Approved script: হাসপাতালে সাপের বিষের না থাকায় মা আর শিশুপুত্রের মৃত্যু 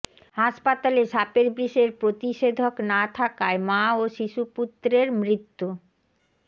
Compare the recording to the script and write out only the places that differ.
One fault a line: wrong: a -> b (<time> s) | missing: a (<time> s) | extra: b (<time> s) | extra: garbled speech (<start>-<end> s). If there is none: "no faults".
extra: প্রতিষেধক (2.0 s)
wrong: আর -> ও (3.9 s)